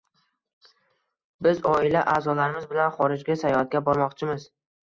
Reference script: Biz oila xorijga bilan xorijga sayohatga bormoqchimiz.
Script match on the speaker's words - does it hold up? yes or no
no